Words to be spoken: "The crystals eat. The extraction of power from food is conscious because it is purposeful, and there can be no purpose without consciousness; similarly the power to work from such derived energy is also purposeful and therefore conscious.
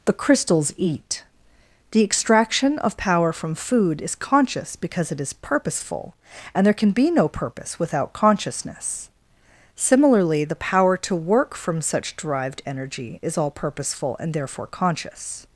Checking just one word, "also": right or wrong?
wrong